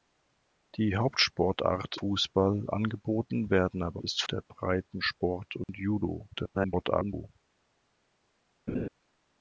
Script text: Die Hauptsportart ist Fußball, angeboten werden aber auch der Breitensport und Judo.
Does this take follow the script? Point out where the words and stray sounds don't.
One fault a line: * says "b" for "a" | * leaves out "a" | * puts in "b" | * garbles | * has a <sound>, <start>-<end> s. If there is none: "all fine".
* leaves out "ist"
* says "ist" for "auch"
* has a dropout, 5.6-5.7 s
* garbles
* has a laugh, 8.7-8.9 s